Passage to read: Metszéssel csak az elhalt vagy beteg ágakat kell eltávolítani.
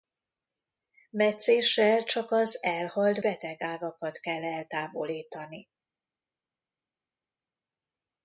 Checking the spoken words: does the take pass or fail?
fail